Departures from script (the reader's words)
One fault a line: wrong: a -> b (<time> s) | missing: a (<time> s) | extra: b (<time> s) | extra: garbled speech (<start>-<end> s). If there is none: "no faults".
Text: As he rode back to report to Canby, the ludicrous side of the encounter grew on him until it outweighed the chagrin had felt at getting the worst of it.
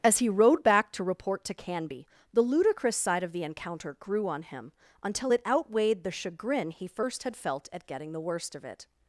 extra: he first (6.7 s)